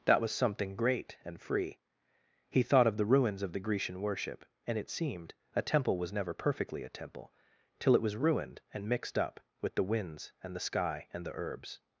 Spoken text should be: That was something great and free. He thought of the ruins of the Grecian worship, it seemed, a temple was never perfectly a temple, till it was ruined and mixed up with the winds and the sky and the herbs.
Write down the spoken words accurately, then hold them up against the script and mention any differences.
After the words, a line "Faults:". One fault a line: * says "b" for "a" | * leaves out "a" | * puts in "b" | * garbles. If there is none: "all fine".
That was something great and free. He thought of the ruins of the Grecian worship, and it seemed, a temple was never perfectly a temple, till it was ruined and mixed up with the winds and the sky and the herbs.
Faults:
* puts in "and"